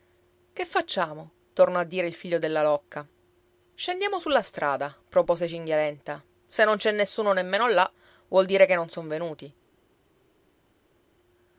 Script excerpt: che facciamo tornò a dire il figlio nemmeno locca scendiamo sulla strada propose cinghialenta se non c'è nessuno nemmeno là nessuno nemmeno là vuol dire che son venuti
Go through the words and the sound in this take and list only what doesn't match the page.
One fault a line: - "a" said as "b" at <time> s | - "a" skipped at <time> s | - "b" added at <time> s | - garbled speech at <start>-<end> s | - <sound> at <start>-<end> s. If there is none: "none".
- "nemmeno" said as "della" at 2.4 s
- "nessuno nemmeno là" skipped at 7.9 s
- "non" added at 8.8 s